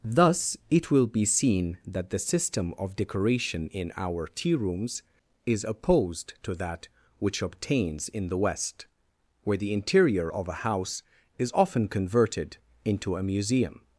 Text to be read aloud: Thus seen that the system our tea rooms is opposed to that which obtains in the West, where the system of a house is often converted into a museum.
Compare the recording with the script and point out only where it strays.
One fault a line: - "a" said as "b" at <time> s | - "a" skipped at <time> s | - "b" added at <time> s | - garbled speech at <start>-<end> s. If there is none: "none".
- "it will be" added at 0.7 s
- "of decoration in" added at 2.8 s
- "system" said as "interior" at 9.7 s